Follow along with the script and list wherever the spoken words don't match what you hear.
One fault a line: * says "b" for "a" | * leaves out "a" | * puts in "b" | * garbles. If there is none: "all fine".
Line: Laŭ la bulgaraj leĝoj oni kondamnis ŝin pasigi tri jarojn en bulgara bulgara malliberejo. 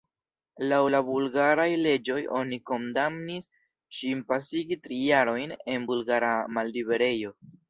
* leaves out "bulgara"